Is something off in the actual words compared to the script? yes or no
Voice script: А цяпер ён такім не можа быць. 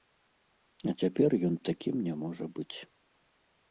no